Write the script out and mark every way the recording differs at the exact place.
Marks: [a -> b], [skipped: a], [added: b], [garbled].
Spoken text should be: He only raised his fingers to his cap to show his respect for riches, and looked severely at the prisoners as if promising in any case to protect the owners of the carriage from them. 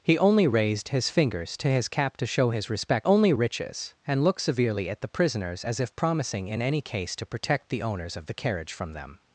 He only raised his fingers to his cap to show his respect [for -> only] riches, and looked severely at the prisoners as if promising in any case to protect the owners of the carriage from them.